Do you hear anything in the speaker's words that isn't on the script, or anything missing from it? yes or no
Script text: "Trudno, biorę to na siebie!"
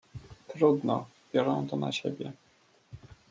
no